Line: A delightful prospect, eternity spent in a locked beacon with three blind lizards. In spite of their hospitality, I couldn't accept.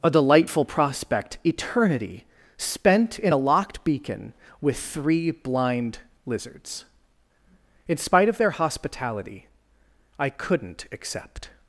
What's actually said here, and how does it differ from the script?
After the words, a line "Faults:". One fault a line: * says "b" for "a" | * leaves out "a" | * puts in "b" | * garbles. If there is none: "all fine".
A delightful prospect, eternity spent in a locked beacon with three blind lizards. In spite of their hospitality, I couldn't accept.
Faults:
all fine